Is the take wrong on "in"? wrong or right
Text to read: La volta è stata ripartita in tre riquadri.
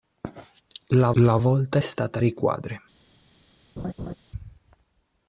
wrong